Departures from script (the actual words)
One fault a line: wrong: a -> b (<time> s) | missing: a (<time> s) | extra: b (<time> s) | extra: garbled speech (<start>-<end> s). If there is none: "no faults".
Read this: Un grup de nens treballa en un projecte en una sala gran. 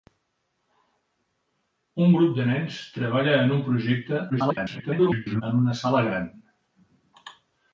extra: garbled speech (4.3-5.4 s)